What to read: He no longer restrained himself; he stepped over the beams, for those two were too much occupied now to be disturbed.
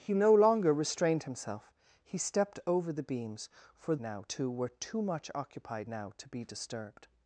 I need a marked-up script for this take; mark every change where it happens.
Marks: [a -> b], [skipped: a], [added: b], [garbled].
He no longer restrained himself; he stepped over the beams, for [those -> now] two were too much occupied now to be disturbed.